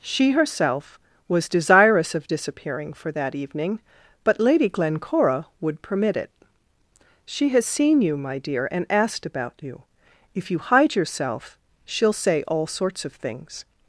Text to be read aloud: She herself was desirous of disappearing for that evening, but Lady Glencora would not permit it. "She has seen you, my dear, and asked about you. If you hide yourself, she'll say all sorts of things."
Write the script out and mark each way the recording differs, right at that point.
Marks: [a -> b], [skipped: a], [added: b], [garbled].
She herself was desirous of disappearing for that evening, but Lady Glencora would [skipped: not] permit it. "She has seen you, my dear, and asked about you. If you hide yourself, she'll say all sorts of things."